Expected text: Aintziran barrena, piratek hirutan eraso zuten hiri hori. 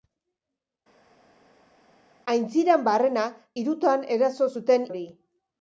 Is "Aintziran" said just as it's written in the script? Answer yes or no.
yes